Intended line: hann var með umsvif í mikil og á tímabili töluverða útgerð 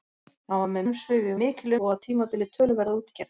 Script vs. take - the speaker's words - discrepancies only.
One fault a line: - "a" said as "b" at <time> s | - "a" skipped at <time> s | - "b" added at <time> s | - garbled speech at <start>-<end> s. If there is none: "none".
none